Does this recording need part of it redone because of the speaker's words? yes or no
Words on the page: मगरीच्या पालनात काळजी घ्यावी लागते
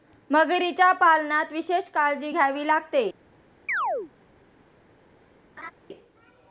yes